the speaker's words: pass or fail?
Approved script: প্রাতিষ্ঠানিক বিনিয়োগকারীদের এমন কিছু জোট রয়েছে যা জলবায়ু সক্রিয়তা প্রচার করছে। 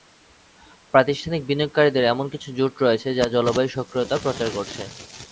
pass